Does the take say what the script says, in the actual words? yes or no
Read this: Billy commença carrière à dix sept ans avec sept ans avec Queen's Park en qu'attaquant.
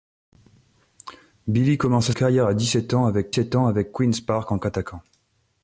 yes